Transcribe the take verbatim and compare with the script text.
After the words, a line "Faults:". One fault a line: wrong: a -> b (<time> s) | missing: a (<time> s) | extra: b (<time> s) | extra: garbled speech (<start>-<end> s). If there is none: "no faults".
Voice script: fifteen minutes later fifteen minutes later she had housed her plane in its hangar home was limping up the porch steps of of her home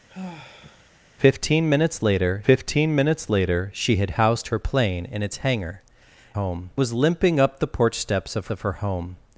fifteen minutes later fifteen minutes later she had housed her plane in its hangar home was limping up the porch steps of of her home
Faults:
no faults